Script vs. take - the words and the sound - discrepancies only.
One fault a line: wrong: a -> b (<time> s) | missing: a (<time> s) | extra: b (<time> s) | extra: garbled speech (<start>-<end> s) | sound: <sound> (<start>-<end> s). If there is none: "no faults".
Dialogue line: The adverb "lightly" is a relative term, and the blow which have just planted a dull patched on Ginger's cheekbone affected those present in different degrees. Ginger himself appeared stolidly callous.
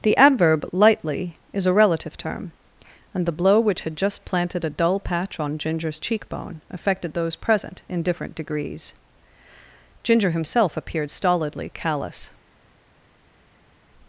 wrong: have -> had (3.8 s)
wrong: patched -> patch (5.0 s)